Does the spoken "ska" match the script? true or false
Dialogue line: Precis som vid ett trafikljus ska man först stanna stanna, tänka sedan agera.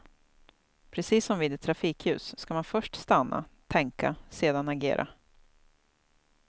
true